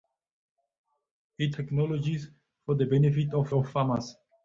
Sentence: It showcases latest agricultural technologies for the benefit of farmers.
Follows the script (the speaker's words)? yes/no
no